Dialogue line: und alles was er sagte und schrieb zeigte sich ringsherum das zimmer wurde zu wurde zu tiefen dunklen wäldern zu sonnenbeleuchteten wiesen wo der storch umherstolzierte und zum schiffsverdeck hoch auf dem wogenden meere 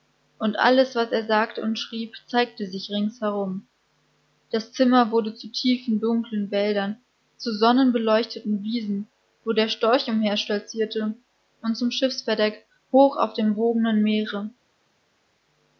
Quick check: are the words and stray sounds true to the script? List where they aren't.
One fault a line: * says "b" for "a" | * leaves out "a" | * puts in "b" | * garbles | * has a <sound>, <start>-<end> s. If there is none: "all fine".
* leaves out "wurde zu"